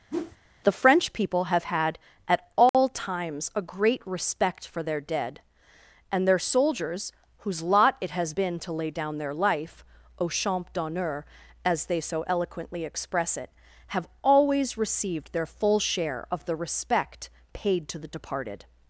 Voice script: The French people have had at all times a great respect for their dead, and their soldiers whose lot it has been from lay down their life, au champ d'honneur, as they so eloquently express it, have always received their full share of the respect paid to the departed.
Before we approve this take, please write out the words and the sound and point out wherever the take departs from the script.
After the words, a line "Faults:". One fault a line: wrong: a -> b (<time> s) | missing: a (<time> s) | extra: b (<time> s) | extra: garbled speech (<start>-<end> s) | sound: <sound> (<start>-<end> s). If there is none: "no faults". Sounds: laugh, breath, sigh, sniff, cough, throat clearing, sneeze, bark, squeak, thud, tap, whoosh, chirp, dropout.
The French people have had at all times a great respect for their dead, and their soldiers whose lot it has been to lay down their life, au champ d'honneur, as they so eloquently express it, have always received their full share of the respect paid to the departed.
Faults:
sound: whoosh (0.1-0.4 s)
sound: dropout (2.7-2.7 s)
wrong: from -> to (8.6 s)